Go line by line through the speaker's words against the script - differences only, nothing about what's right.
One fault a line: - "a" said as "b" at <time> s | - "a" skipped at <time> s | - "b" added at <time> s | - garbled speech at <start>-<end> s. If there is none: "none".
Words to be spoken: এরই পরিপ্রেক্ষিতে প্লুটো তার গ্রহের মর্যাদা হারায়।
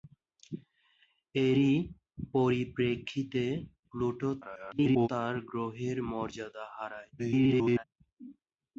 - garbled speech at 4.4-5.1 s
- garbled speech at 7.2-7.8 s